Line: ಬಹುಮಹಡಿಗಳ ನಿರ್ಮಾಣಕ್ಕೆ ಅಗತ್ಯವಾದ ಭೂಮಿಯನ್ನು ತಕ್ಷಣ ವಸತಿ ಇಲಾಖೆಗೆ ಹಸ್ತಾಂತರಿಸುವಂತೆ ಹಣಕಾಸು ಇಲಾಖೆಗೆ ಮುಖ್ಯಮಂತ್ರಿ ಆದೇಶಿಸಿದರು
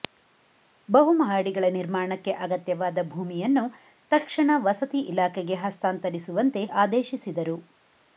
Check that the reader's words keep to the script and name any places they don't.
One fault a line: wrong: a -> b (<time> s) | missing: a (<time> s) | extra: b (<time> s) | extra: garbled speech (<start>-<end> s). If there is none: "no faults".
missing: ಹಣಕಾಸು ಇಲಾಖೆಗೆ ಮುಖ್ಯಮಂತ್ರಿ (6.6 s)